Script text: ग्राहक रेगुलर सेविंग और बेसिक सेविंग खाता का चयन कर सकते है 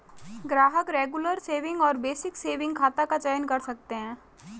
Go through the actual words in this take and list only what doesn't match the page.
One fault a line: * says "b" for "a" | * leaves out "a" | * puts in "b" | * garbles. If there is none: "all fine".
all fine